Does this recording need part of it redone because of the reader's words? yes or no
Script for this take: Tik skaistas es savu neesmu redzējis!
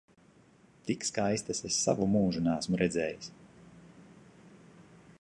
yes